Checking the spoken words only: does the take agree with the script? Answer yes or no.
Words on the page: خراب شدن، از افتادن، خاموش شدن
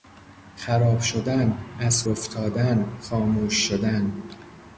yes